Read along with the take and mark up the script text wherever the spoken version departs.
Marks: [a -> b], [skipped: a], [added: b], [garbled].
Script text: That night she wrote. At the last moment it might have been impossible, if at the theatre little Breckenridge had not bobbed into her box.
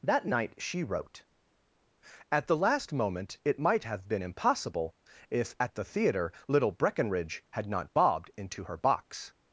That night she wrote. At the last moment it might have been impossible, if at the theatre little Breckenridge had not bobbed into her box.